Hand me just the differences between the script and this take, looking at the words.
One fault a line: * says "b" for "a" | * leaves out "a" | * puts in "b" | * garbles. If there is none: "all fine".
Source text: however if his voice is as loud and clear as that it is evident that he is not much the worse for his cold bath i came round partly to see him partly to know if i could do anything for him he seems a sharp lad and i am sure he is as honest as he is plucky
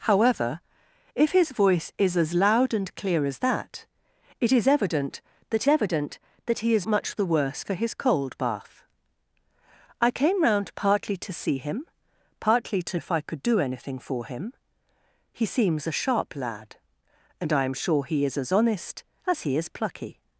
* puts in "evident that"
* leaves out "not"
* leaves out "know"